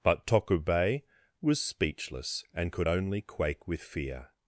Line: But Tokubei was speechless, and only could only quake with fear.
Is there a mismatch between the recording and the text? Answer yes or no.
yes